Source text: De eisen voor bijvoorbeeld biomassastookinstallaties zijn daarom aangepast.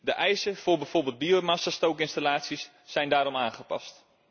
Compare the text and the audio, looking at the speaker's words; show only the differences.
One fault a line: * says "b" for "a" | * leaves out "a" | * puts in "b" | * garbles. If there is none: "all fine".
all fine